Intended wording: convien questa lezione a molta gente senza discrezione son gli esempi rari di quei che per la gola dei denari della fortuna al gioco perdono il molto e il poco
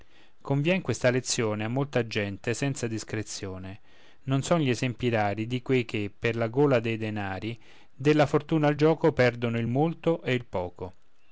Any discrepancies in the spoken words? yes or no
yes